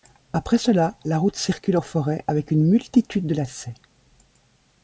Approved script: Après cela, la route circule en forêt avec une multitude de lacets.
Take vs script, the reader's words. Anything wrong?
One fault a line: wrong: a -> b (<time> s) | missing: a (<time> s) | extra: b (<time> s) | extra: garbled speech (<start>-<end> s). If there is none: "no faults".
no faults